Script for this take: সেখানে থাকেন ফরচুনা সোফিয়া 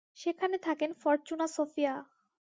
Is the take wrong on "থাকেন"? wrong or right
right